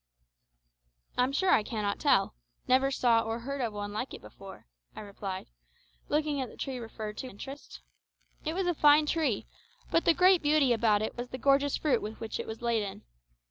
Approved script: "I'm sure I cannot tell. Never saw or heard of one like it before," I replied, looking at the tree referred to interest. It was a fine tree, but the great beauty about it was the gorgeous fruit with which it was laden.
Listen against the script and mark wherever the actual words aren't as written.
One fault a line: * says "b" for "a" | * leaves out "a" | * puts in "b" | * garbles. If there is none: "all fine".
all fine